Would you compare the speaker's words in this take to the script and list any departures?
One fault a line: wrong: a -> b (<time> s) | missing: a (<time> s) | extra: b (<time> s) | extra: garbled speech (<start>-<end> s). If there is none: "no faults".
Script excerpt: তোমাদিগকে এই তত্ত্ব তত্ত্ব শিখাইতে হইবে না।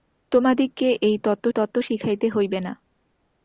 no faults